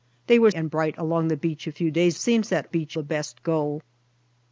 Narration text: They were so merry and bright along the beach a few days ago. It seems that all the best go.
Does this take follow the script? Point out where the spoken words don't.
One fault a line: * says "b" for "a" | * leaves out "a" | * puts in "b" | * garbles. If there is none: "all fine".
* leaves out "so merry"
* leaves out "ago It"
* says "beach" for "all"